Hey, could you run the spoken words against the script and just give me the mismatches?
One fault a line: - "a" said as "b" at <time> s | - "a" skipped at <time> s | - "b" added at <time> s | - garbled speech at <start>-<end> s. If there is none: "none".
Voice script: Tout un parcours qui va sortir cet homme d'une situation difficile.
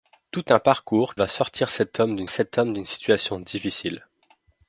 - "qui" skipped at 1.1 s
- "cet homme d'une" added at 2.3 s